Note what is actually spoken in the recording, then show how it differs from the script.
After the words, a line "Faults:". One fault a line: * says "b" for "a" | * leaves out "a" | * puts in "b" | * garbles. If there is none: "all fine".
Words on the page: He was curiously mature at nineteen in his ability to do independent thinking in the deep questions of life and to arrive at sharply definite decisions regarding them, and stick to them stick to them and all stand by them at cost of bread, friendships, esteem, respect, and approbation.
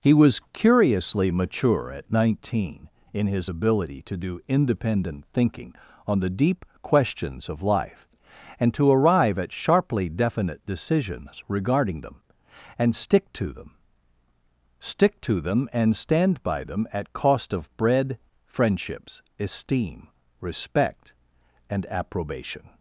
He was curiously mature at nineteen in his ability to do independent thinking on the deep questions of life and to arrive at sharply definite decisions regarding them, and stick to them stick to them and stand by them at cost of bread, friendships, esteem, respect, and approbation.
Faults:
* says "on" for "in"
* leaves out "all"